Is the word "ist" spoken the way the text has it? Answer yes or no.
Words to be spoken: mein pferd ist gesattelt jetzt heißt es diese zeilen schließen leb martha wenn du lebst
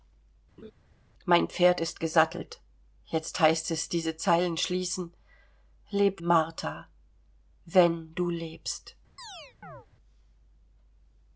yes